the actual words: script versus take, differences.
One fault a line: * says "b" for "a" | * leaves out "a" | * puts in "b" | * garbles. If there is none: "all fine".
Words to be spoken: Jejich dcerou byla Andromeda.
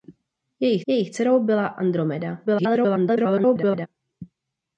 * puts in "jejich"
* garbles